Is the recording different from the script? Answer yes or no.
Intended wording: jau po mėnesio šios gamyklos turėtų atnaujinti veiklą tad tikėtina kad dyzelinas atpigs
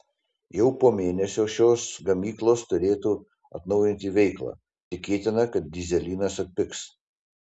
yes